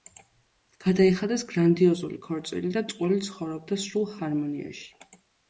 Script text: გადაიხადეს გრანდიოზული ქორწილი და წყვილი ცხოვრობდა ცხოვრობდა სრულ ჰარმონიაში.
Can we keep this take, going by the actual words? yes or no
no